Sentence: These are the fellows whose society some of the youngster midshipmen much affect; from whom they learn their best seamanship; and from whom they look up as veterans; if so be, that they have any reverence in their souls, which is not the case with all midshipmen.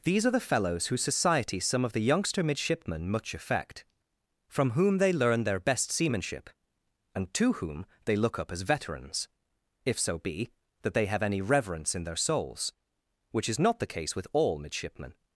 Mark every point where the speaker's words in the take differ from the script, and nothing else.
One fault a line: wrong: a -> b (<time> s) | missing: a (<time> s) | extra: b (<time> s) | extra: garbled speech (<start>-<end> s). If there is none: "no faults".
wrong: from -> to (7.3 s)